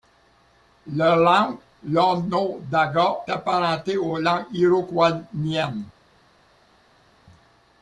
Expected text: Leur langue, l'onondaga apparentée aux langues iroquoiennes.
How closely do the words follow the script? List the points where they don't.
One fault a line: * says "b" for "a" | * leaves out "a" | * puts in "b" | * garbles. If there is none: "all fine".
all fine